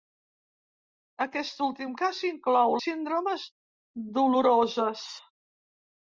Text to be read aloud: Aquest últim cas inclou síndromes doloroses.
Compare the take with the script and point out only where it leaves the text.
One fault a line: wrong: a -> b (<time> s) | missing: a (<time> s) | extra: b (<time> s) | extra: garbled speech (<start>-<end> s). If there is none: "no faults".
no faults